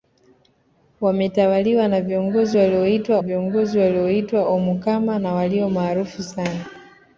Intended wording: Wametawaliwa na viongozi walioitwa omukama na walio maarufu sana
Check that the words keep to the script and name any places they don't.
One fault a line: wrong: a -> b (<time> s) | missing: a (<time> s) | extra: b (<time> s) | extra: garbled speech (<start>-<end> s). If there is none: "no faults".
extra: viongozi walioitwa (3.2 s)